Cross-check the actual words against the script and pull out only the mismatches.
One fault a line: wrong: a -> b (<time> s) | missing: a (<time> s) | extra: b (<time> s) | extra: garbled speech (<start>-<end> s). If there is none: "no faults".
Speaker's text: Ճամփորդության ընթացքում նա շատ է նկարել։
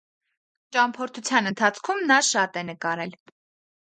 no faults